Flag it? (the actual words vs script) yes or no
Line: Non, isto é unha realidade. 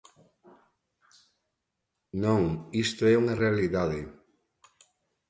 no